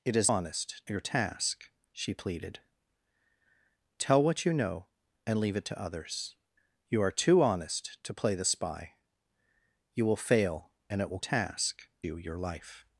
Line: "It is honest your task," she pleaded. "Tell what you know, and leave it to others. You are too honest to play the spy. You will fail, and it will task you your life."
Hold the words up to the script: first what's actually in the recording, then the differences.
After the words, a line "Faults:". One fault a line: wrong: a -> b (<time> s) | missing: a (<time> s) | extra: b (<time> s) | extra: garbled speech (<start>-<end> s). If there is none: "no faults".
"It is honest your task," she pleaded. "Tell what you know, and leave it to others. You are too honest to play the spy. You will fail, and it will task you your life."
Faults:
no faults